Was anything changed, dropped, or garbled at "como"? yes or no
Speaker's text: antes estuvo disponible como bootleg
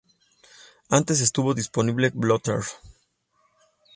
yes